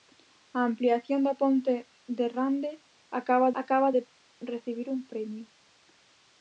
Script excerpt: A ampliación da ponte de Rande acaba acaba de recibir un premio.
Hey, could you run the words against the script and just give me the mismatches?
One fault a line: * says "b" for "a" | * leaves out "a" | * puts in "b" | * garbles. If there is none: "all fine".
all fine